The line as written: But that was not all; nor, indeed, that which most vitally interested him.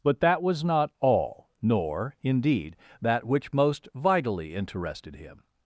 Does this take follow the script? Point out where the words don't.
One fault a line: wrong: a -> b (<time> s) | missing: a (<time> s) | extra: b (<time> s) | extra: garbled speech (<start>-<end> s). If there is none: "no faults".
no faults